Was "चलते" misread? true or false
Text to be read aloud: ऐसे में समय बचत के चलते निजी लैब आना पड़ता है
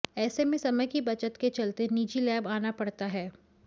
false